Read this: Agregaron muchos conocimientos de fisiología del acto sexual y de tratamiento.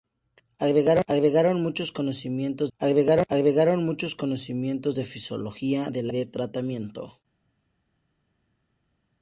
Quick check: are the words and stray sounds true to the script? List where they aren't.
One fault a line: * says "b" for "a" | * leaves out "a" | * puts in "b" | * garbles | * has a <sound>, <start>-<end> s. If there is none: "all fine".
* puts in "agregaron muchos conocimientos"
* leaves out "acto sexual y"